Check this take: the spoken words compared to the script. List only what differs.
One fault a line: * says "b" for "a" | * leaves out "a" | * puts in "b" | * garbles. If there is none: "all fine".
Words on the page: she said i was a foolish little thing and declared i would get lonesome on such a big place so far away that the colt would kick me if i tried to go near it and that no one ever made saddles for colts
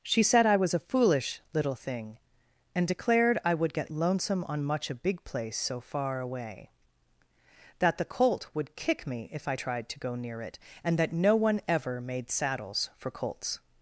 * says "much" for "such"